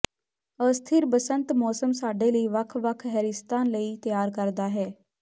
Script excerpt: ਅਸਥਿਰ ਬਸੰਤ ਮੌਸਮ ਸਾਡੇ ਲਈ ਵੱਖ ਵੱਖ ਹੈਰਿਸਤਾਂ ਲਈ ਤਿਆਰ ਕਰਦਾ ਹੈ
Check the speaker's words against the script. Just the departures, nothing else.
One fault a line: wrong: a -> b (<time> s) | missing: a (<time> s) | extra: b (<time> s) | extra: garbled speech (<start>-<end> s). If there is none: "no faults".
no faults